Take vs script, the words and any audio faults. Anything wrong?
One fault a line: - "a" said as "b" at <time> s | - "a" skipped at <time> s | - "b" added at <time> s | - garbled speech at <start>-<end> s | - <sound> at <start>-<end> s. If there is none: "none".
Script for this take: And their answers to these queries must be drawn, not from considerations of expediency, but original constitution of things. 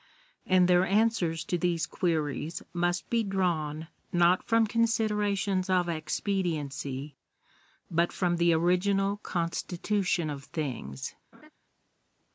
- "from the" added at 8.1 s
- laugh at 11.3-11.5 s